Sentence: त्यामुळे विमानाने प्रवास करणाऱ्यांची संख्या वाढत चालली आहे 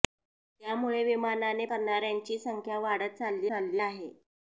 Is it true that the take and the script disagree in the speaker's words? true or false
true